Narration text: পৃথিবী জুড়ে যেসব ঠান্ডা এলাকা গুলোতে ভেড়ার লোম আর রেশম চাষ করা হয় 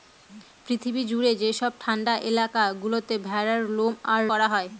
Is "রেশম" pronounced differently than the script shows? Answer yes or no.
yes